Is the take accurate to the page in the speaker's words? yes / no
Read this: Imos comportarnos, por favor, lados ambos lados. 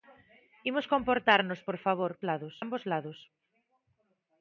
yes